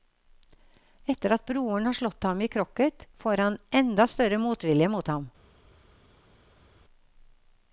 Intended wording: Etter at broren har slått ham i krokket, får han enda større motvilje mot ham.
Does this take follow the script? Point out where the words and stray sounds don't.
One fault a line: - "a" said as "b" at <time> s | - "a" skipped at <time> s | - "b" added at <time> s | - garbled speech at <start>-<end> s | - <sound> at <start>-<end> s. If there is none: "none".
none